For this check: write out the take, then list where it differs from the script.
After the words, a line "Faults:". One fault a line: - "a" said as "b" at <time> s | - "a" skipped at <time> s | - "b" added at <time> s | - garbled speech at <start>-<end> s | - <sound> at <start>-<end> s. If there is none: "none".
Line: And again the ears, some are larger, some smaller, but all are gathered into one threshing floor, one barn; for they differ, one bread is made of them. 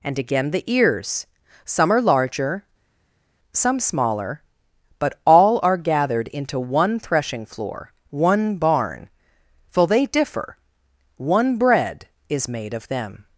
And again the ears, some are larger, some smaller, but all are gathered into one threshing floor, one barn; for they differ, one bread is made of them.
Faults:
none